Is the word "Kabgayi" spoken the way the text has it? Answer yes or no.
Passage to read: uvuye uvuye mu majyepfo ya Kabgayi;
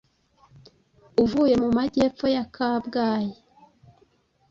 yes